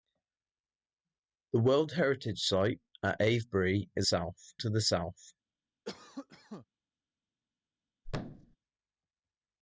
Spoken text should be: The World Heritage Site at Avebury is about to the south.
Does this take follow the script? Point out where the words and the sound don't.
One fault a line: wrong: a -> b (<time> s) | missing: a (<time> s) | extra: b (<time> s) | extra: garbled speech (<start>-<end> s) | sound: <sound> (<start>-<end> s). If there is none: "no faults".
wrong: about -> south (4.0 s)
sound: cough (5.8-6.7 s)
sound: thud (8.0-8.6 s)